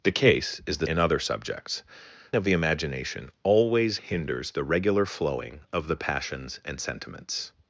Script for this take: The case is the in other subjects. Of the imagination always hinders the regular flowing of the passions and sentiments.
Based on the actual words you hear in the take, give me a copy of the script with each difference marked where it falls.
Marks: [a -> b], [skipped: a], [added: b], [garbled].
The case is the in other subjects. Of the imagination always hinders the regular flowing of the passions and sentiments.